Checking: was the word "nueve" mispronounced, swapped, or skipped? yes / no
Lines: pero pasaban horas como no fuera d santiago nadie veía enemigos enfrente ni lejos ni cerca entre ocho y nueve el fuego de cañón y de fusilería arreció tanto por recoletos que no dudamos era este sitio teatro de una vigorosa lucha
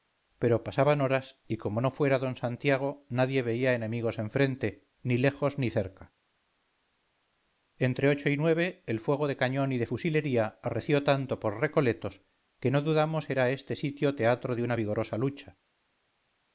no